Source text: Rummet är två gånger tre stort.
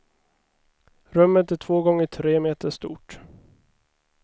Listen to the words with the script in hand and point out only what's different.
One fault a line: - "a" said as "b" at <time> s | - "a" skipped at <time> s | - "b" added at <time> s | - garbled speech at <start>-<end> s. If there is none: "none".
- "meter" added at 2.4 s